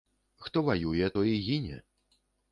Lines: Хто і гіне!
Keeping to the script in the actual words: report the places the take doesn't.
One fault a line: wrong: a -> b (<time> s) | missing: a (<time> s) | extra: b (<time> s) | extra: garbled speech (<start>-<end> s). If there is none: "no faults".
extra: ваюе той (0.7 s)